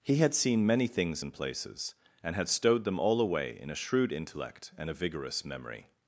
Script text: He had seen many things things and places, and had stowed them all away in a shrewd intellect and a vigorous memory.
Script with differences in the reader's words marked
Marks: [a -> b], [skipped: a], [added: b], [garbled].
He had seen many things [skipped: things] and places, and had stowed them all away in a shrewd intellect and a vigorous memory.